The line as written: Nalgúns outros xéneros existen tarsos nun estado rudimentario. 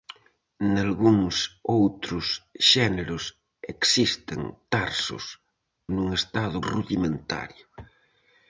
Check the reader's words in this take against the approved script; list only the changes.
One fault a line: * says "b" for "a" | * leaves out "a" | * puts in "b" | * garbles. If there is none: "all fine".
all fine